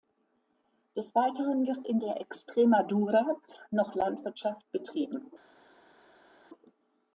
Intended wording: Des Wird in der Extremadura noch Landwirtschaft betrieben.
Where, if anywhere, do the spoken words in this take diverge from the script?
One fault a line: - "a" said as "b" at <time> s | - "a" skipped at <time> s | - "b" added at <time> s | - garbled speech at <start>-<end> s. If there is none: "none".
- "Weiteren" added at 1.1 s